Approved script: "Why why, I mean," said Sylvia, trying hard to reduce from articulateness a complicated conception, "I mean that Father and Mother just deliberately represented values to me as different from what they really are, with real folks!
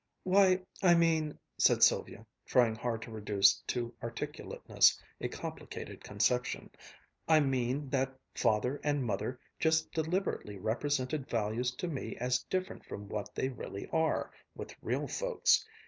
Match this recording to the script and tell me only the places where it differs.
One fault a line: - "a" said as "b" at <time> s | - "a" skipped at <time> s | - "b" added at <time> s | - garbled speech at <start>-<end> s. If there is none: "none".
- "why" skipped at 0.6 s
- "from" said as "to" at 3.7 s